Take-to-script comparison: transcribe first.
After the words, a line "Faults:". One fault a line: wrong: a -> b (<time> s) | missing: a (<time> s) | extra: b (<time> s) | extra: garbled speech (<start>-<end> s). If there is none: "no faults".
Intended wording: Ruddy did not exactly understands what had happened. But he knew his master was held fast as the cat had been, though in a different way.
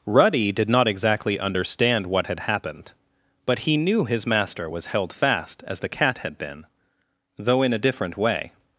Ruddy did not exactly understand what had happened. But he knew his master was held fast as the cat had been, though in a different way.
Faults:
wrong: understands -> understand (1.4 s)